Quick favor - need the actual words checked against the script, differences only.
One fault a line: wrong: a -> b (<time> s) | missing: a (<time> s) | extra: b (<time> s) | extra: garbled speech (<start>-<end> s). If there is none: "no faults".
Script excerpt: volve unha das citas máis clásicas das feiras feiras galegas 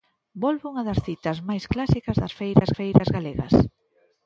no faults